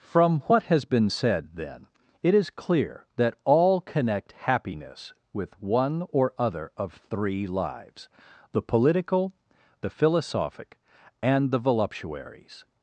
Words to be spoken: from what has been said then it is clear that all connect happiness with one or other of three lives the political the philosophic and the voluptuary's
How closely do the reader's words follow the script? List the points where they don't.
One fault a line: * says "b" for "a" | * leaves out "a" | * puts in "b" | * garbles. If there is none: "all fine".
all fine